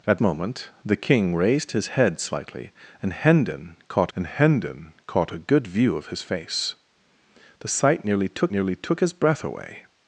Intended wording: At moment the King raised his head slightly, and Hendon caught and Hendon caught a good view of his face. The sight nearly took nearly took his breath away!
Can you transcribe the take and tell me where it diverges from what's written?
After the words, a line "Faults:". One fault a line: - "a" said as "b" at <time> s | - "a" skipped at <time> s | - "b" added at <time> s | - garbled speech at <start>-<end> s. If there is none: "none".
At moment the King raised his head slightly, and Hendon caught and Hendon caught a good view of his face. The sight nearly took nearly took his breath away!
Faults:
none